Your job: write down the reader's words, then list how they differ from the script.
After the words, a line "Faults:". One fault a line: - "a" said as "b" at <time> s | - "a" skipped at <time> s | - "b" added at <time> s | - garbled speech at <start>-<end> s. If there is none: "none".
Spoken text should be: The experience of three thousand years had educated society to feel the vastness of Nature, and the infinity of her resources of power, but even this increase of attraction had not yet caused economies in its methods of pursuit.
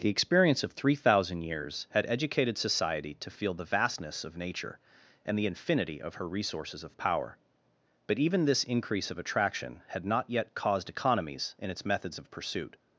The experience of three thousand years had educated society to feel the vastness of Nature, and the infinity of her resources of power, but even this increase of attraction had not yet caused economies in its methods of pursuit.
Faults:
none